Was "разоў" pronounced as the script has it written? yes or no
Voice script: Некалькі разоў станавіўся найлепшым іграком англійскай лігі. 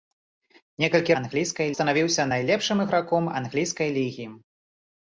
no